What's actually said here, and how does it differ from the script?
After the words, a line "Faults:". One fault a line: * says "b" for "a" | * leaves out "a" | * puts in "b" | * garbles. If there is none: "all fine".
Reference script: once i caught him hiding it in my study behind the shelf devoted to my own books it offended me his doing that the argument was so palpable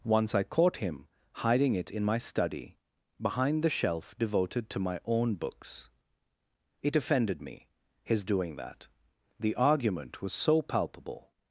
once i caught him hiding it in my study behind the shelf devoted to my own books it offended me his doing that the argument was so palpable
Faults:
all fine